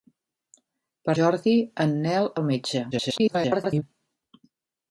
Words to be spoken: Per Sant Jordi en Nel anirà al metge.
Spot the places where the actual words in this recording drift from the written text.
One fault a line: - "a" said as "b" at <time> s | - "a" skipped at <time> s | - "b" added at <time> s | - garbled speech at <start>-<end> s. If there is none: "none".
- "Sant" skipped at 1.1 s
- "anirà" skipped at 2.3 s
- garbled speech at 2.9-3.8 s